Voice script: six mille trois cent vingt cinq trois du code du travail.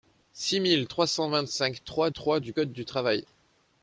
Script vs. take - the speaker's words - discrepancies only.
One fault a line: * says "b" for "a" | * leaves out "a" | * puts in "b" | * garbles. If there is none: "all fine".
* puts in "trois"